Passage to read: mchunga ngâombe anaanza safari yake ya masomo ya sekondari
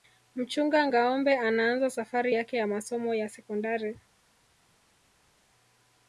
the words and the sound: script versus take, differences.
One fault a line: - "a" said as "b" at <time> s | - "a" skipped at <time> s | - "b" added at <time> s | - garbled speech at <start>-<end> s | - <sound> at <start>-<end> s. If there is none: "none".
none